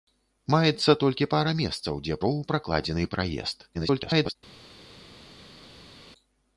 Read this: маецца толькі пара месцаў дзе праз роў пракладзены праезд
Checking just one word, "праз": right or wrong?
wrong